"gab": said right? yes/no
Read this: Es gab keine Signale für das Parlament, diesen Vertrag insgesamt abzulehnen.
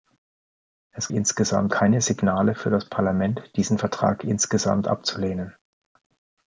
no